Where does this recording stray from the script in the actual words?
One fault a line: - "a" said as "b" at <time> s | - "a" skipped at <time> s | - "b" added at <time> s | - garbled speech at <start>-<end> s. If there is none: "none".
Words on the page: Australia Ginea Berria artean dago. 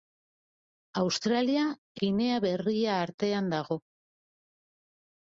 none